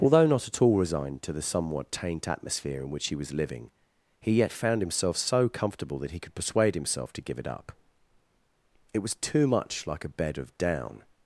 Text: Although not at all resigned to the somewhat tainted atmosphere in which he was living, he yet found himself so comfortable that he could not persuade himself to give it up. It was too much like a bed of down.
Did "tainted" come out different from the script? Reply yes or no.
yes